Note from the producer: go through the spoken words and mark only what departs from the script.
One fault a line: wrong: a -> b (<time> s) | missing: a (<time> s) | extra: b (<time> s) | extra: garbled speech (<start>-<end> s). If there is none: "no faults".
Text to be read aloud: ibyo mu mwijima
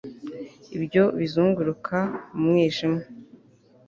extra: bizunguruka (1.2 s)